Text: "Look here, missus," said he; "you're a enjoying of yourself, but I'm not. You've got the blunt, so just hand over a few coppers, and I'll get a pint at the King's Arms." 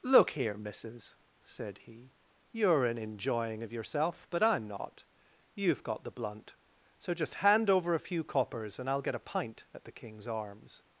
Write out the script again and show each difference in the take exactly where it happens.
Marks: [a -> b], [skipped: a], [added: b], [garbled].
"Look here, missus," said he; "you're [a -> an] enjoying of yourself, but I'm not. You've got the blunt, so just hand over a few coppers, and I'll get a pint at the King's Arms."